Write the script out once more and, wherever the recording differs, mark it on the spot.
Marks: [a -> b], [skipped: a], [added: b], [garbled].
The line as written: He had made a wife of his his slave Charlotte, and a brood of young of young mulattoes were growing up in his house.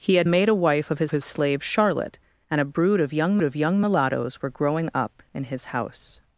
He had made a wife of his his slave Charlotte, and a brood of young of young mulattoes were growing up in his house.